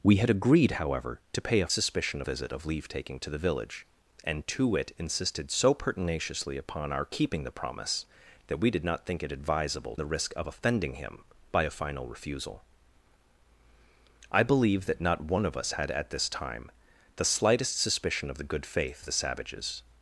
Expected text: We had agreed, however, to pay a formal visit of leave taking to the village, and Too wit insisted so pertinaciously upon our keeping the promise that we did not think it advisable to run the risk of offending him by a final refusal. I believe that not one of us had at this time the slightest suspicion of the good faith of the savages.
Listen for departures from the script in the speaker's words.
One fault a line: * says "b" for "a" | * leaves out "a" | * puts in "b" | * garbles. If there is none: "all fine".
* says "suspicion" for "formal"
* leaves out "to run"
* leaves out "of"